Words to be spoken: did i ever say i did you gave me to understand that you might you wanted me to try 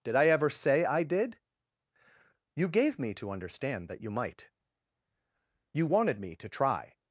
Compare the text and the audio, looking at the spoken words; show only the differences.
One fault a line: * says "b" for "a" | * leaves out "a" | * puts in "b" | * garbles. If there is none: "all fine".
all fine